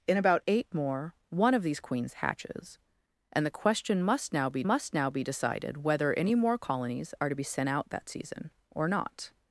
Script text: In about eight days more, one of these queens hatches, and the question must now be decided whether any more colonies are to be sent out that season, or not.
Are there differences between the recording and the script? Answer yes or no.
yes